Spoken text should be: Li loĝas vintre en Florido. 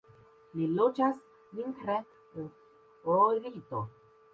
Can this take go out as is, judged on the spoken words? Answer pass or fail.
pass